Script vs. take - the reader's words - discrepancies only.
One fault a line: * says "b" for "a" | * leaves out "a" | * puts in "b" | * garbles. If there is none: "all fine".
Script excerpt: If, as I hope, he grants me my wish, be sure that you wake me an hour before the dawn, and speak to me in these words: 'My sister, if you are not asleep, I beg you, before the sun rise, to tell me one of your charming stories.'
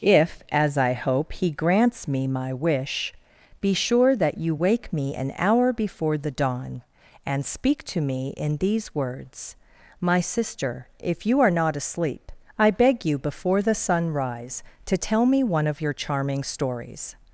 all fine